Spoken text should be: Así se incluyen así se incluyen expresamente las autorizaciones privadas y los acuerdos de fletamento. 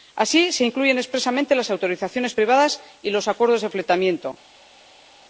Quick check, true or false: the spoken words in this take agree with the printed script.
false